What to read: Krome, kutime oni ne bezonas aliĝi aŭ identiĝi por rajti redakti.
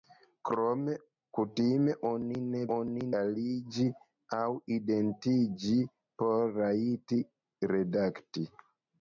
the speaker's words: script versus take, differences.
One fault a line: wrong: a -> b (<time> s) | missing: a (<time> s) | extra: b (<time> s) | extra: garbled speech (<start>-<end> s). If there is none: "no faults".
wrong: bezonas -> oni (2.8 s)